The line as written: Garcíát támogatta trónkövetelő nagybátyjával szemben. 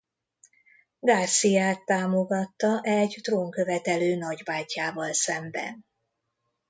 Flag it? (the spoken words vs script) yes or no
yes